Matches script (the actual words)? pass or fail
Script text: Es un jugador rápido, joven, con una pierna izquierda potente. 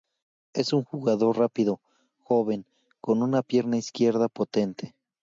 pass